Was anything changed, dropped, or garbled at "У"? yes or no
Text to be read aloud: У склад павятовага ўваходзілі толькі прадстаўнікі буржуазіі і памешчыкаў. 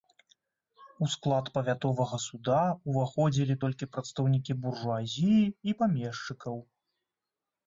no